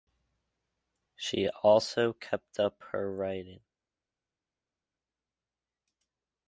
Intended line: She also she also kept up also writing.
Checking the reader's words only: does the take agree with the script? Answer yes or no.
no